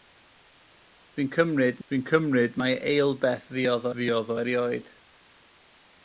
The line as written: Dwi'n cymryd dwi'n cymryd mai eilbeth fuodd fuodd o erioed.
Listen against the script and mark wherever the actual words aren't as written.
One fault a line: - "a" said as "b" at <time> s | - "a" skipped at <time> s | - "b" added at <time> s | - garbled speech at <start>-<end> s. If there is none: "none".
none